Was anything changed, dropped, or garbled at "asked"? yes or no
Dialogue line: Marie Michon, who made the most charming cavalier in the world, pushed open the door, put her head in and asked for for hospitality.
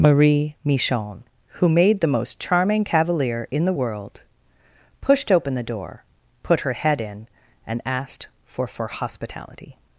no